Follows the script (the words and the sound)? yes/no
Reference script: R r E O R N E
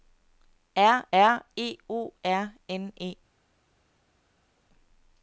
yes